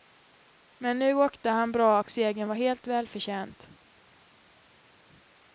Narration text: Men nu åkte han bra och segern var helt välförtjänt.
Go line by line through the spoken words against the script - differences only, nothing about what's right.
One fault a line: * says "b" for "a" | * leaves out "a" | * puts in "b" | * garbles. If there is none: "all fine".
all fine